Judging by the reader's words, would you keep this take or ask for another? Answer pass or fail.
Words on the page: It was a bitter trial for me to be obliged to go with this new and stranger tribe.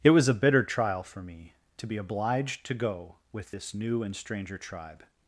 pass